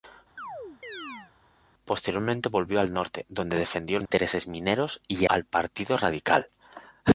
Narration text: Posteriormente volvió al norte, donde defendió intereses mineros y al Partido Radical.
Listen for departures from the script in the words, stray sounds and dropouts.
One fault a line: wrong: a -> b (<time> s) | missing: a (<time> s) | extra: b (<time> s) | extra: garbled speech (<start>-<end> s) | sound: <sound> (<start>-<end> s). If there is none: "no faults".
sound: chirp (0.4-1.3 s)
sound: dropout (4.1-4.1 s)